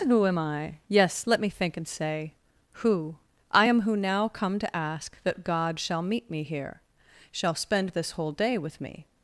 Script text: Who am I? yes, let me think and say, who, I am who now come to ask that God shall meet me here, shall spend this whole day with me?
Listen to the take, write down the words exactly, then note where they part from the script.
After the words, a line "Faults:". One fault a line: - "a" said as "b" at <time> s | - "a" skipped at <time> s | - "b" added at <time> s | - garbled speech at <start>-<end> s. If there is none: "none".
Who am I? yes, let me think and say, who, I am who now come to ask that God shall meet me here, shall spend this whole day with me?
Faults:
none